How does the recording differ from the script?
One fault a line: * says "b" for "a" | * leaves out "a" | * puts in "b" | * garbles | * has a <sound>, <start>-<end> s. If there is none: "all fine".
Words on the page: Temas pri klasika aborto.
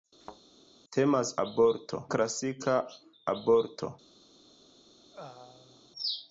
* has a thud, 0.2-0.4 s
* says "aborto" for "pri"
* has a throat clearing, 5.1-5.9 s